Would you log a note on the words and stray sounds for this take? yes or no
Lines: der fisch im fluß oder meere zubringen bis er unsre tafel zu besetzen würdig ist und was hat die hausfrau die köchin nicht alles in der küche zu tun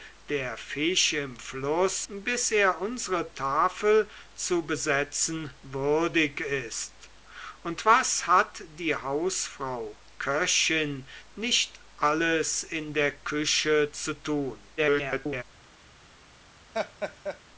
yes